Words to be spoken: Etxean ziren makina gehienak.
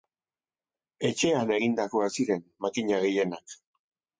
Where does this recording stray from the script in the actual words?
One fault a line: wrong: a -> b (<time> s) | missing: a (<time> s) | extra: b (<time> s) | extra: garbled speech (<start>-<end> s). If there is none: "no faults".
extra: egindakoak (1.6 s)